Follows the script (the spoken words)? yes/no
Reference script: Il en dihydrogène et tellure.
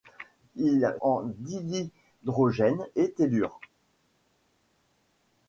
yes